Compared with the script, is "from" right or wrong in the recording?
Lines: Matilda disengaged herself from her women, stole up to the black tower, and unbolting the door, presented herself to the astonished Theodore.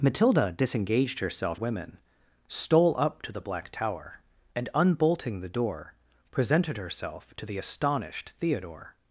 wrong